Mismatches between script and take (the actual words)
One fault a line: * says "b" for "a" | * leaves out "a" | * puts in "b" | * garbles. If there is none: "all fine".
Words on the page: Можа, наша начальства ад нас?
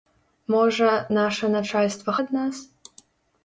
all fine